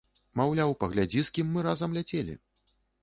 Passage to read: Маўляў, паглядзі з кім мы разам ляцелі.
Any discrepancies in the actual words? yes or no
no